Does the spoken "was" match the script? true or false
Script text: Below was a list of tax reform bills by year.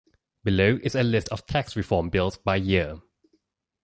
false